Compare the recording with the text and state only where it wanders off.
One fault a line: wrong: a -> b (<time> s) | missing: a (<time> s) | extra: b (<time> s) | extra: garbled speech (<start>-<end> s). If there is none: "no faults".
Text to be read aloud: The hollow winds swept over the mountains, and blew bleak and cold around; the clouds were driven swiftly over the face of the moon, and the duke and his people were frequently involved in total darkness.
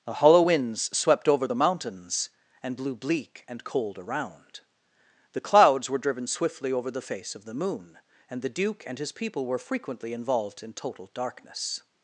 no faults